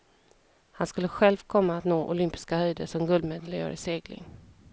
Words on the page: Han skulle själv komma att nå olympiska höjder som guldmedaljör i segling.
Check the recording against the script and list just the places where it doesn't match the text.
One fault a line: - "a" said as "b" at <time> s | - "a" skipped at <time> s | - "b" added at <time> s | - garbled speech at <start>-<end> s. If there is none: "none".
none